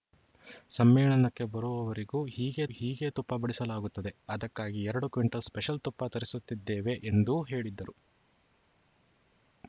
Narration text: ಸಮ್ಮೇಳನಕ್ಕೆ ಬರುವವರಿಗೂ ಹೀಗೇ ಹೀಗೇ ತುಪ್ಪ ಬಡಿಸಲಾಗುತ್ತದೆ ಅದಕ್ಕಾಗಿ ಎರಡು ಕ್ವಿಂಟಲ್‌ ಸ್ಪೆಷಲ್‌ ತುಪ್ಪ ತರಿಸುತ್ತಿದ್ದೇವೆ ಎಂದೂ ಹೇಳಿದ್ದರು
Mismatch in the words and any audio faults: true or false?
false